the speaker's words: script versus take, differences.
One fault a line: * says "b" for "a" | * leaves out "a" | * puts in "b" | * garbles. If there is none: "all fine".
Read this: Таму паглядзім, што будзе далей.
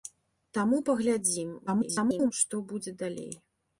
* garbles